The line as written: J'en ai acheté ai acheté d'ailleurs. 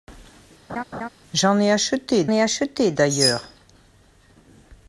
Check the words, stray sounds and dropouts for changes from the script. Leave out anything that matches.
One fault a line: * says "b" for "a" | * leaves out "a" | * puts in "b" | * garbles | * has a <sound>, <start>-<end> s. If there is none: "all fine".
* has a laugh, 0.7-1.1 s